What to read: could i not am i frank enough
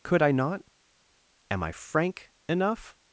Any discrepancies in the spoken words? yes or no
no